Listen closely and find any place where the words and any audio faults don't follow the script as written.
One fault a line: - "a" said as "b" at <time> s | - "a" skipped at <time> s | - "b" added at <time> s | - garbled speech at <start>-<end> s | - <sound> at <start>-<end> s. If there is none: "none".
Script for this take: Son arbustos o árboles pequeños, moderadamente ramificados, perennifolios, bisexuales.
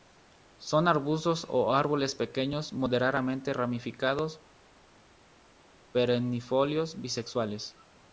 none